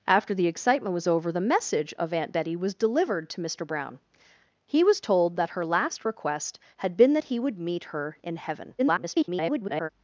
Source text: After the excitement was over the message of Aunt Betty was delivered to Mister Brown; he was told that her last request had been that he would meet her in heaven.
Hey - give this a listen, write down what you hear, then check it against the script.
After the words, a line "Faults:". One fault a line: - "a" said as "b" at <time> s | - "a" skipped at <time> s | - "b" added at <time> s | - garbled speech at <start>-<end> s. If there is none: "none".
After the excitement was over the message of Aunt Betty was delivered to Mister Brown; he was told that her last request had been that he would meet her in heaven. [garbled]
Faults:
- garbled speech at 8.8-9.9 s